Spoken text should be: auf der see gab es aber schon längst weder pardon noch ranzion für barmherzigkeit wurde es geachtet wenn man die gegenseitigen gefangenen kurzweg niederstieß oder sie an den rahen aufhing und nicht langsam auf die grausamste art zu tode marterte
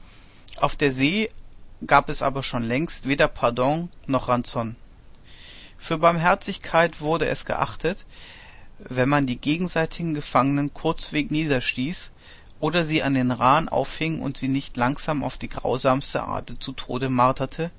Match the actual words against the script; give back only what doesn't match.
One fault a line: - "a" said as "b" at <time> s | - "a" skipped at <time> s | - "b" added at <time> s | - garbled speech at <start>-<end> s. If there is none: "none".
- "sie" added at 14.4 s